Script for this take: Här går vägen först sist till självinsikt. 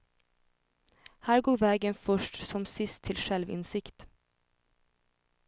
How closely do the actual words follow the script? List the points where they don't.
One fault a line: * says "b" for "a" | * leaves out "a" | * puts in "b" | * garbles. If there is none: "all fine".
* puts in "som"